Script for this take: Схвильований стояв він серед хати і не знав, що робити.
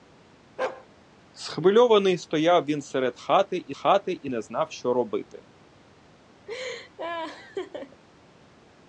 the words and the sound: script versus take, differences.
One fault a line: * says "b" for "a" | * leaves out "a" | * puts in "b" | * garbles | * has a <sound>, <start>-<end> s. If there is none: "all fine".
* has a bark, 0.6-0.9 s
* puts in "хати і"
* has a laugh, 6.5-8.0 s